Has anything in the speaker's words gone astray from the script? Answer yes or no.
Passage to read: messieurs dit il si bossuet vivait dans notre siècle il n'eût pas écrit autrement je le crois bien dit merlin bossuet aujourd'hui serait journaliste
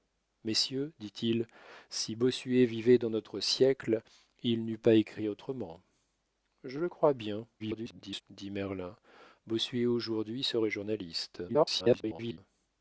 yes